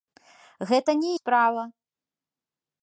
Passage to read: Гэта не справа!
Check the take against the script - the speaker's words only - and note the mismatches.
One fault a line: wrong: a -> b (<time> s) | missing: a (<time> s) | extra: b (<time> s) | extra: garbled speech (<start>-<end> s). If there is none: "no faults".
no faults